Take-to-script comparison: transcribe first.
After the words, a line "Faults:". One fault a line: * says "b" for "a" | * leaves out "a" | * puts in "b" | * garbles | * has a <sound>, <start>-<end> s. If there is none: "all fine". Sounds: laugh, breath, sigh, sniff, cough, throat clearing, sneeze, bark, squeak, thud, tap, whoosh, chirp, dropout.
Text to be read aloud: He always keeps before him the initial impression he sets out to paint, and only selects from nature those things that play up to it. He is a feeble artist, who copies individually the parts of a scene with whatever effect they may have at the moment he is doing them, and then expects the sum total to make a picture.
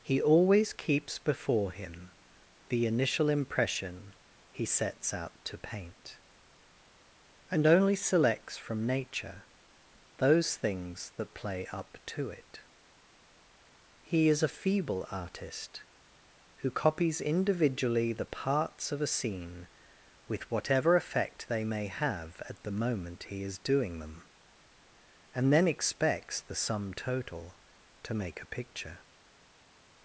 He always keeps before him the initial impression he sets out to paint, and only selects from nature those things that play up to it. He is a feeble artist, who copies individually the parts of a scene with whatever effect they may have at the moment he is doing them, and then expects the sum total to make a picture.
Faults:
all fine